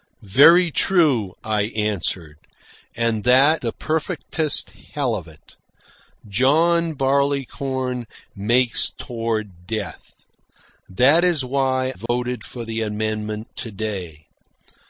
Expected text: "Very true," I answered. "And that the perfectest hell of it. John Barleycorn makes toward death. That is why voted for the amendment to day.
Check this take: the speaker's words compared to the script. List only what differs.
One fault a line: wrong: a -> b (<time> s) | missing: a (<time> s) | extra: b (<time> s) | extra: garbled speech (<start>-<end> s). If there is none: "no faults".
no faults